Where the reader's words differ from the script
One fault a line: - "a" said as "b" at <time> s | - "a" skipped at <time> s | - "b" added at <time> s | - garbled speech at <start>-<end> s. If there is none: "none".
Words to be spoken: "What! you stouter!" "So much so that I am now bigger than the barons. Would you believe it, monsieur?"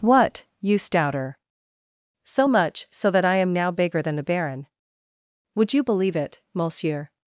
- "barons" said as "baron" at 4.2 s